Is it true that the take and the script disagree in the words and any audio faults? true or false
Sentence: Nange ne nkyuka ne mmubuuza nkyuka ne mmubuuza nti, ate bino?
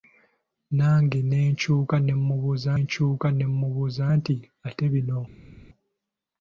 false